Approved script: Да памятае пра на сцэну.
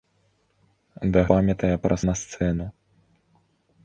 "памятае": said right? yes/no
yes